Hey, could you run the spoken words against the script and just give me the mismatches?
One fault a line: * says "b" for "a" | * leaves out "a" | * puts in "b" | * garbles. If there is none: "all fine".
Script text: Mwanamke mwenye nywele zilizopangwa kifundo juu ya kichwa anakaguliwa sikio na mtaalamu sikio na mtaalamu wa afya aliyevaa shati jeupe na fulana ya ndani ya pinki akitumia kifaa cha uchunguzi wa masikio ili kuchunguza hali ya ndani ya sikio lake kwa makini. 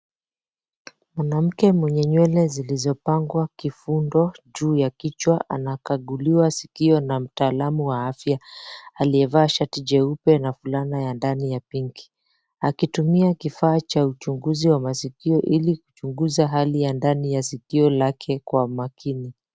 * leaves out "sikio na mtaalamu"